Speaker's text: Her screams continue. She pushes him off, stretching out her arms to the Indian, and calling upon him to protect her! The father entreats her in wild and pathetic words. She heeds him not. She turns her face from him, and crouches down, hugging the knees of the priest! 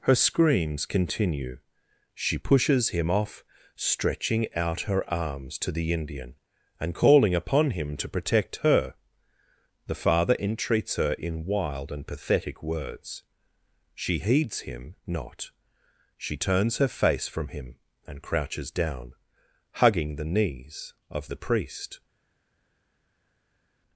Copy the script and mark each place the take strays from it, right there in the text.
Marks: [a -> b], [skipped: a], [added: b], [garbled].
Her screams continue. She pushes him off, stretching out her arms to the Indian, and calling upon him to protect her! The father entreats her in wild and pathetic words. She heeds him not. She turns her face from him, and crouches down, hugging the knees of the priest!